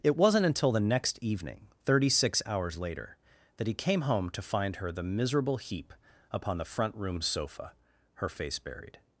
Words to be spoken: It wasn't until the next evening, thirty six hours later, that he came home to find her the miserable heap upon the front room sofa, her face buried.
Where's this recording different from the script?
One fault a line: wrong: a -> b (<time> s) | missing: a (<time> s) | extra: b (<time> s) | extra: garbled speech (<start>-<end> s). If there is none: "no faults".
no faults